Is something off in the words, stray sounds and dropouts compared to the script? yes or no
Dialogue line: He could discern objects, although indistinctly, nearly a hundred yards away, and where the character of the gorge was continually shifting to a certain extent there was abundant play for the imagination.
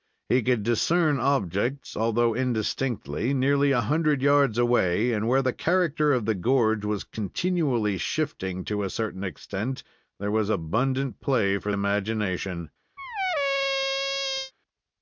yes